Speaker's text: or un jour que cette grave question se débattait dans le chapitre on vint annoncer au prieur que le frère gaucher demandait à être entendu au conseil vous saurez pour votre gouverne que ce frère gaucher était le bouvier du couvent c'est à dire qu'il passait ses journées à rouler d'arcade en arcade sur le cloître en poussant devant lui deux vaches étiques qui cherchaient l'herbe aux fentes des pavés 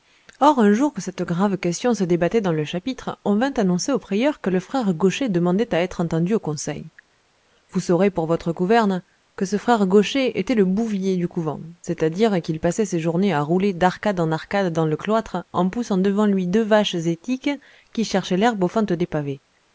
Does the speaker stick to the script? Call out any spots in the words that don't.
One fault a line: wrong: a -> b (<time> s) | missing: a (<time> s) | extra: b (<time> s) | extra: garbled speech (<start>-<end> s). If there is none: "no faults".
wrong: sur -> dans (14.7 s)